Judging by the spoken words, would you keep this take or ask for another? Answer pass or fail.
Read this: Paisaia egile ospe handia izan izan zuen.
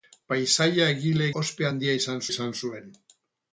pass